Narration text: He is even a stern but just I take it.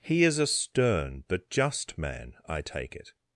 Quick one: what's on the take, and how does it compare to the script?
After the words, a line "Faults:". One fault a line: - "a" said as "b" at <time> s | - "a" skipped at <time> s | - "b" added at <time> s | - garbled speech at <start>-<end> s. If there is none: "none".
He is a stern but just man, I take it.
Faults:
- "even" skipped at 0.4 s
- "man" added at 1.9 s